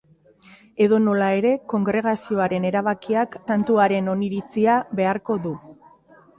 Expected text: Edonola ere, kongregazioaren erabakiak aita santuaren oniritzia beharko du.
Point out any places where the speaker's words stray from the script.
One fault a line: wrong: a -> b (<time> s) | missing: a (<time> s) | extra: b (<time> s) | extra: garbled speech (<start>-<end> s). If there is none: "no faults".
missing: aita (3.4 s)